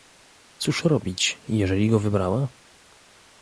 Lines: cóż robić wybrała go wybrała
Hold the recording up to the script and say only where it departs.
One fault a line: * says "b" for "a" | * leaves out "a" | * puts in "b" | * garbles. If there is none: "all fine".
* says "jeżeli" for "wybrała"